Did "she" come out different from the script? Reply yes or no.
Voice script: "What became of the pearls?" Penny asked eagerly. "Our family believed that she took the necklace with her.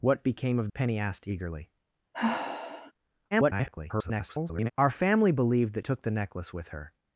yes